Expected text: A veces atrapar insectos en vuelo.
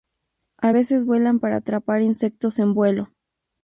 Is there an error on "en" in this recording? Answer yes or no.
no